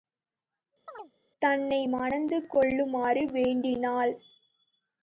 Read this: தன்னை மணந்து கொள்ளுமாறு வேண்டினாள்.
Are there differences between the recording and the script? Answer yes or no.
no